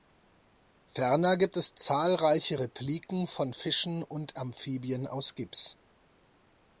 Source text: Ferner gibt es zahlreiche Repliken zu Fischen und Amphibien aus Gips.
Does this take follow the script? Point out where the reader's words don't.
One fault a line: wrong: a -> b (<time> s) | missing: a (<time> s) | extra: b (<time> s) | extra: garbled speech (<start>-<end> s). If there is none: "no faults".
wrong: zu -> von (3.3 s)